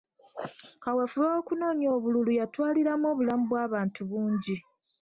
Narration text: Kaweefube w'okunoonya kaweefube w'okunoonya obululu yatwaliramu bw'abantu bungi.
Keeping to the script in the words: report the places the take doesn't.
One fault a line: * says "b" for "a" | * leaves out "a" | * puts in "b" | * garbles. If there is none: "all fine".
* leaves out "kaweefube w'okunoonya"
* puts in "obulamu"